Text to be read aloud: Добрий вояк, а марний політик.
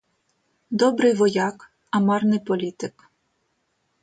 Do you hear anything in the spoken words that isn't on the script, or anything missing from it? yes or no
no